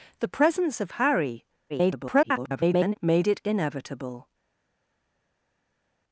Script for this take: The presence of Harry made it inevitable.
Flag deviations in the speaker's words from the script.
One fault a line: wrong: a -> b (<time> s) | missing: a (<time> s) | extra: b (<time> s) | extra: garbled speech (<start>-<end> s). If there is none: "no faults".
extra: garbled speech (1.7-2.9 s)